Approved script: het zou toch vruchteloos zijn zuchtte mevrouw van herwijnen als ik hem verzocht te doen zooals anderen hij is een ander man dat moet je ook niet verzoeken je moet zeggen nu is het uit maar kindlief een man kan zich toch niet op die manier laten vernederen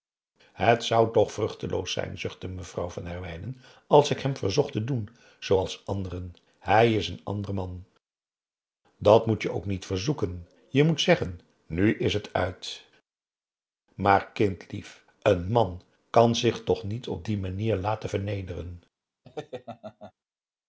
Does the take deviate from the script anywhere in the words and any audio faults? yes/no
yes